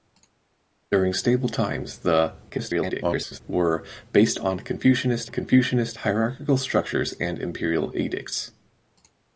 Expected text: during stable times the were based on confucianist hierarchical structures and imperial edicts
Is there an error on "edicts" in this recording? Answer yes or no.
no